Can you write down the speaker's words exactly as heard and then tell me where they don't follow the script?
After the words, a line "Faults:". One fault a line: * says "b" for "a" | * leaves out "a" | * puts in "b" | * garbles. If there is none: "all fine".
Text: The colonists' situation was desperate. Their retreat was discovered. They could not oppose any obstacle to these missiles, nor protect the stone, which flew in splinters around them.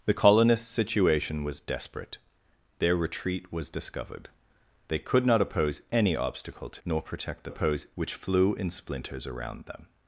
The colonists' situation was desperate. Their retreat was discovered. They could not oppose any obstacle to nor protect the oppose, which flew in splinters around them.
Faults:
* leaves out "these missiles"
* says "oppose" for "stone"